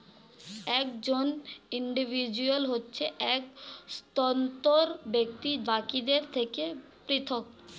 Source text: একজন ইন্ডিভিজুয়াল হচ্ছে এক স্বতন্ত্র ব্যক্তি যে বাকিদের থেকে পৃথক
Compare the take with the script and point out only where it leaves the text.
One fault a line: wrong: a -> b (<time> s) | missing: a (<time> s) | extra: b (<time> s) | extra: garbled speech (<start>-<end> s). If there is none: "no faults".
missing: যে (5.5 s)